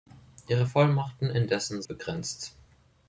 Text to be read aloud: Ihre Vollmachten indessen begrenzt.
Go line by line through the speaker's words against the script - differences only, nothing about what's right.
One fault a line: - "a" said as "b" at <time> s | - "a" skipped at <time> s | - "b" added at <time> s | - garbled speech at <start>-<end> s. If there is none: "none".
none